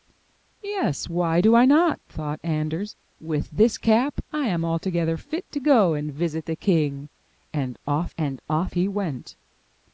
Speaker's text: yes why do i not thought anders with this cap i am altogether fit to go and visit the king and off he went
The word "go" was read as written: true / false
true